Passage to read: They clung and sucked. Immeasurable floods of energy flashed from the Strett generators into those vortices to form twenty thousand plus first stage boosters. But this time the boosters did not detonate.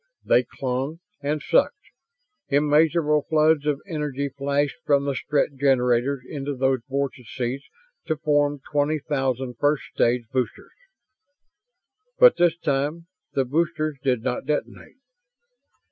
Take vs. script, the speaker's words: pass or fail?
fail